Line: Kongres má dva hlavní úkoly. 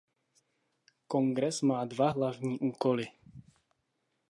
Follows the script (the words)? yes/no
yes